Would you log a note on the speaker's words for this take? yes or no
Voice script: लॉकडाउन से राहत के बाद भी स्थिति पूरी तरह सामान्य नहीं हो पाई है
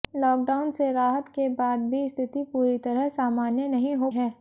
yes